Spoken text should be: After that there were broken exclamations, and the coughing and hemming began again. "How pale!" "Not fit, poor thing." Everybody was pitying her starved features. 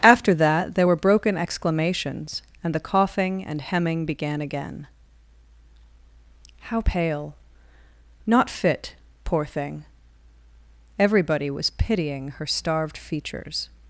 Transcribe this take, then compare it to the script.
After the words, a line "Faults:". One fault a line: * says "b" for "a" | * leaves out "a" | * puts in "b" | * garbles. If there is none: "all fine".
After that there were broken exclamations, and the coughing and hemming began again. "How pale!" "Not fit, poor thing." Everybody was pitying her starved features.
Faults:
all fine